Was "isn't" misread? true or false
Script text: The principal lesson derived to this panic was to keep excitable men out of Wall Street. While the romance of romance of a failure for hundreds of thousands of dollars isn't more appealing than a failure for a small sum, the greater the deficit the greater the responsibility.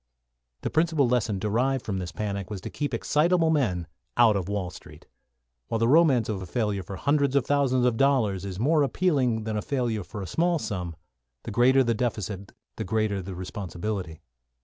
true